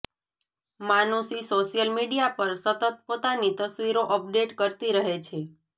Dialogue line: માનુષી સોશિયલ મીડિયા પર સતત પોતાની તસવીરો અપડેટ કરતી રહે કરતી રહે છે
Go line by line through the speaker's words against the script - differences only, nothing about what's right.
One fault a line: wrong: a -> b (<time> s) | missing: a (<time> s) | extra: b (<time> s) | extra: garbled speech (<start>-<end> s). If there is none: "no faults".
missing: કરતી રહે (5.2 s)